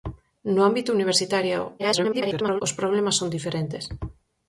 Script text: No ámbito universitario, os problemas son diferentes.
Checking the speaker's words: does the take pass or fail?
fail